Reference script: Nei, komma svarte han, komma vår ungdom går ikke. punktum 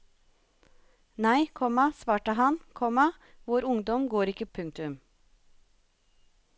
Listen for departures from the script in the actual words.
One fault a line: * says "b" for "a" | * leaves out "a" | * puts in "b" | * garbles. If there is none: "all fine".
all fine